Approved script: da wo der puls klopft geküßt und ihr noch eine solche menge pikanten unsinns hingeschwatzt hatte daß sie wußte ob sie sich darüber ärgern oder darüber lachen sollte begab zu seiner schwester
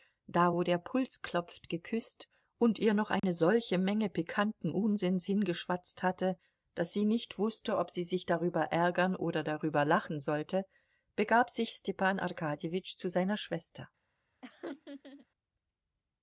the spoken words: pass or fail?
fail